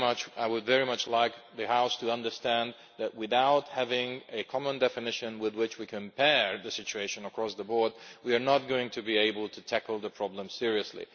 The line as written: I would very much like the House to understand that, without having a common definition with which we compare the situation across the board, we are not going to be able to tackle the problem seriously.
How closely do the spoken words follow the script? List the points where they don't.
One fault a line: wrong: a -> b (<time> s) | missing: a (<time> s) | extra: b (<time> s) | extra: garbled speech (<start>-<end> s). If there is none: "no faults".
no faults